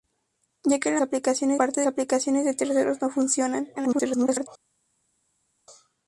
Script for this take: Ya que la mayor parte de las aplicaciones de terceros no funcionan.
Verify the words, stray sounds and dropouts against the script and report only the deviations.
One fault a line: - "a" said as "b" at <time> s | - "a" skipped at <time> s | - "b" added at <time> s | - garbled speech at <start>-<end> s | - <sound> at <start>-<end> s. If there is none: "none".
- "mayor" said as "aplicaciones" at 1.0 s
- "las" skipped at 1.9 s
- garbled speech at 3.8-4.5 s